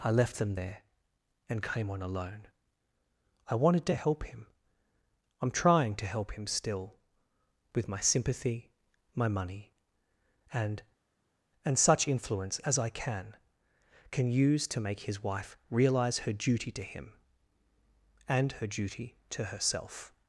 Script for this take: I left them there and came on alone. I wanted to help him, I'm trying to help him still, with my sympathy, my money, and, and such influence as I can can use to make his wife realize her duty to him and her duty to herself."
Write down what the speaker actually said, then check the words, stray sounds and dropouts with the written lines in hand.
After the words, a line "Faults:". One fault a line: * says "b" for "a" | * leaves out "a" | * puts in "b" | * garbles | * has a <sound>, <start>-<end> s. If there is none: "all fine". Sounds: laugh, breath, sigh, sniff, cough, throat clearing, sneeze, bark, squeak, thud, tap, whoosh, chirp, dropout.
I left them there and came on alone. I wanted to help him, I'm trying to help him still, with my sympathy, my money, and, and such influence as I can can use to make his wife realize her duty to him and her duty to herself."
Faults:
all fine